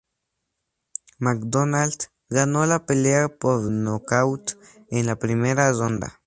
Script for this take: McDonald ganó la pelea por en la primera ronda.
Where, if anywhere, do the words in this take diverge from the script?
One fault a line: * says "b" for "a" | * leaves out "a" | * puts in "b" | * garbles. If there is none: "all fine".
* puts in "nocaut"